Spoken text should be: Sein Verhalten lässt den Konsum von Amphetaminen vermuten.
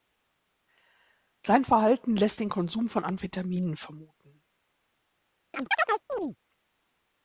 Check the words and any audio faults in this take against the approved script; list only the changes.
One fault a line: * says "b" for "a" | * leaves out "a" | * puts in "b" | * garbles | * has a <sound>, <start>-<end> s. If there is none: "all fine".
* has a chirp, 5.5-6.4 s